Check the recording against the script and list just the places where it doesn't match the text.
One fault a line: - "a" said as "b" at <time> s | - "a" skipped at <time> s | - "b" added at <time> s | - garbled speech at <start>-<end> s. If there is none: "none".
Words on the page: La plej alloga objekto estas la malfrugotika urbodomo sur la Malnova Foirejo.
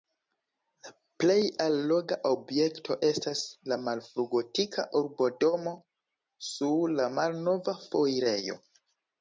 none